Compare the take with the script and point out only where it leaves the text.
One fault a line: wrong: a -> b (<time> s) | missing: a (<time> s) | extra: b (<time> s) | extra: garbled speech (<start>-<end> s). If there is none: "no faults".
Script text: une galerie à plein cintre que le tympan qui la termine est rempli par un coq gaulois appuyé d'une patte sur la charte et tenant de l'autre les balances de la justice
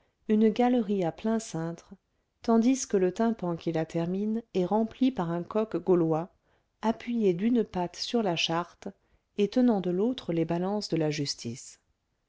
extra: tandis (2.4 s)